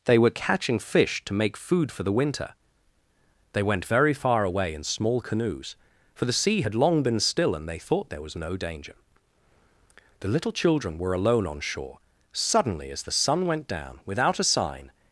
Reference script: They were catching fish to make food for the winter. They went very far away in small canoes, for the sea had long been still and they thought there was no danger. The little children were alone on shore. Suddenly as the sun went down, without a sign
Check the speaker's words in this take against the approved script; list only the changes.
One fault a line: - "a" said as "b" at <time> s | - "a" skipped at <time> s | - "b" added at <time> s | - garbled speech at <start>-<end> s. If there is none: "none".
none